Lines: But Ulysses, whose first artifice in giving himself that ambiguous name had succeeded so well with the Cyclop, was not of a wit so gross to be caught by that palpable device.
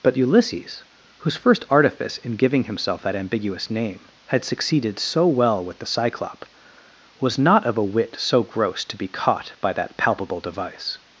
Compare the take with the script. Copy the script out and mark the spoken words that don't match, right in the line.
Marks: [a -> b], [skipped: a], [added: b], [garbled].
But Ulysses, whose first artifice in giving himself that ambiguous name had succeeded so well with the Cyclop, was not of a wit so gross to be caught by that palpable device.